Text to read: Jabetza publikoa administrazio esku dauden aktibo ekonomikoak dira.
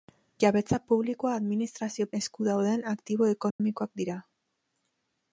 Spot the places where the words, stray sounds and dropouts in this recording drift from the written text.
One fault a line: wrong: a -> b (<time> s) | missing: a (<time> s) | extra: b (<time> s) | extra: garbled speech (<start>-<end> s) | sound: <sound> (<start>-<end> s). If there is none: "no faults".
sound: dropout (3.5-3.6 s)